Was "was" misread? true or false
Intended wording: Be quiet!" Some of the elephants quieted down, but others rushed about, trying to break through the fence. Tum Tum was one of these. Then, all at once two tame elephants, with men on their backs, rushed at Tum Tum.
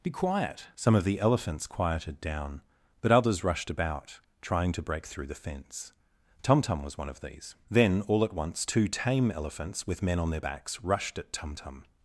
false